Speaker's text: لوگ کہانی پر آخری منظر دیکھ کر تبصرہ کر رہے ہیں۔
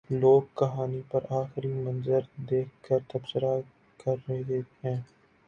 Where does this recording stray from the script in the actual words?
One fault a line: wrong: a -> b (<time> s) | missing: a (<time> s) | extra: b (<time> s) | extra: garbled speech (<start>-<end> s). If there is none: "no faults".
no faults